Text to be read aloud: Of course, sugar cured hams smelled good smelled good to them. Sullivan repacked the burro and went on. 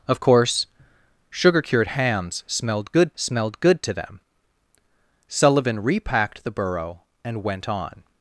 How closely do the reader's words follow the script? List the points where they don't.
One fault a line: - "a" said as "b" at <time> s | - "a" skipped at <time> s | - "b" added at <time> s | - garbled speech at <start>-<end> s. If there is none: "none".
none